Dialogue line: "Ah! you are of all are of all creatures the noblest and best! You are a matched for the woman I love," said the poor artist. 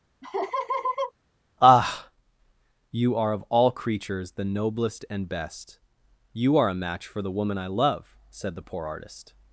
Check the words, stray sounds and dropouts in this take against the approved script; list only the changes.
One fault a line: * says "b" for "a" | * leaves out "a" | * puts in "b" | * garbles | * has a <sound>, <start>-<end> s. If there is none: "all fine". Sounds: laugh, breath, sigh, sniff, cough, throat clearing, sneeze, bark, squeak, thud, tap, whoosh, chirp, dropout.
* has a laugh, 0.2-1.1 s
* leaves out "are of all"
* says "match" for "matched"